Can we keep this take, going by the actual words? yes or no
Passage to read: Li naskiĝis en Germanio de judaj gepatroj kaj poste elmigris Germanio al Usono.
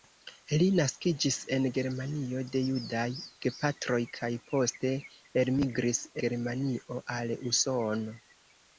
yes